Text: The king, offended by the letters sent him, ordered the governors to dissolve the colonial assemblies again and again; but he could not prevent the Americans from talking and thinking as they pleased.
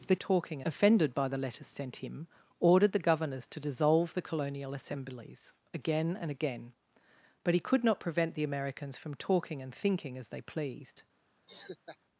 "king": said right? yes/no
no